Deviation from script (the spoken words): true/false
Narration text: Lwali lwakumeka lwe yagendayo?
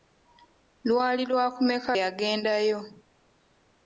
true